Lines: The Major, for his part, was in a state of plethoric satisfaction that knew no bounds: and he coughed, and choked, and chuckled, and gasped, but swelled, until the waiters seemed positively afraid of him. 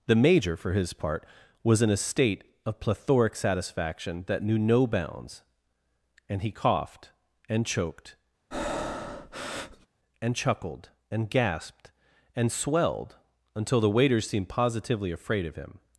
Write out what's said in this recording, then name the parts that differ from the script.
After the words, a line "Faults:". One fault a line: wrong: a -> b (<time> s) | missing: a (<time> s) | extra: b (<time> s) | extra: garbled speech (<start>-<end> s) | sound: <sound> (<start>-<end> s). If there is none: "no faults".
The Major, for his part, was in a state of plethoric satisfaction that knew no bounds: and he coughed, and choked, and chuckled, and gasped, and swelled, until the waiters seemed positively afraid of him.
Faults:
sound: breath (8.5-9.9 s)
wrong: but -> and (12.3 s)